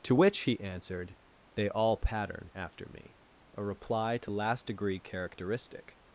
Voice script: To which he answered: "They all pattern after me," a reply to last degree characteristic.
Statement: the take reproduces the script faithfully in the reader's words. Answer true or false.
true